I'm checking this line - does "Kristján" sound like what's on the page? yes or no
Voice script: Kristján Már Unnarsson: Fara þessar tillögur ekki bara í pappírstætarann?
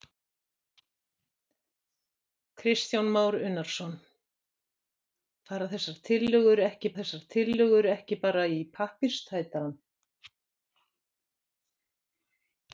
yes